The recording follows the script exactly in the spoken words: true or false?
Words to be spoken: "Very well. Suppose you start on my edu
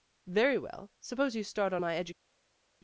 true